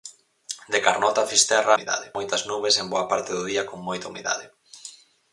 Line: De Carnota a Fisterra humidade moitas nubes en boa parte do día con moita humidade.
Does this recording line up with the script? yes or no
yes